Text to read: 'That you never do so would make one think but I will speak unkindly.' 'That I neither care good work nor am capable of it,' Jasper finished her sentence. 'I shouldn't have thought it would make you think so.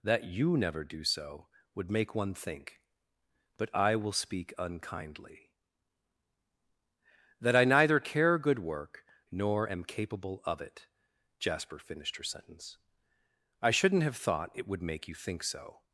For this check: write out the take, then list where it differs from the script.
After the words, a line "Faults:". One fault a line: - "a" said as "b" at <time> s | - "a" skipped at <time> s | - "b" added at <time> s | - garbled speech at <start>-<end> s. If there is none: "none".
'That you never do so would make one think but I will speak unkindly.' 'That I neither care good work nor am capable of it,' Jasper finished her sentence. 'I shouldn't have thought it would make you think so.
Faults:
none